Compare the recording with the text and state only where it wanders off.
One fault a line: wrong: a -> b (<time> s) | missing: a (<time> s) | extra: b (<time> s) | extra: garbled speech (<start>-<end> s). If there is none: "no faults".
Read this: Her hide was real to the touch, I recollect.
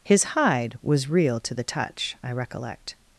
wrong: Her -> His (0.0 s)